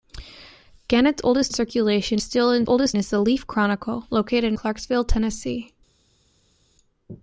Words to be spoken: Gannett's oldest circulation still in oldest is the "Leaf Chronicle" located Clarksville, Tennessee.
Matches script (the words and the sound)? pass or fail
pass